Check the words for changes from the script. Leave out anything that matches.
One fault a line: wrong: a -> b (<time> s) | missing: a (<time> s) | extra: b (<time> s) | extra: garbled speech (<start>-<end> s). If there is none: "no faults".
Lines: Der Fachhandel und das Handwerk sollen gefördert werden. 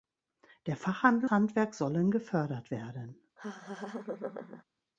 missing: und das (1.3 s)